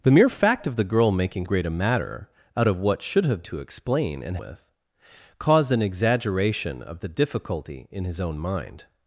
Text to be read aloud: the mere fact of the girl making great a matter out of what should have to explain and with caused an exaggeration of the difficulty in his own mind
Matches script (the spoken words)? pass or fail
pass